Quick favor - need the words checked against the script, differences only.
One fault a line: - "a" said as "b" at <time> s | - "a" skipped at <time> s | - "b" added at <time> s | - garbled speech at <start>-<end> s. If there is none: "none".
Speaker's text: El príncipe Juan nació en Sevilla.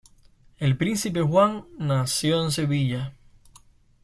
none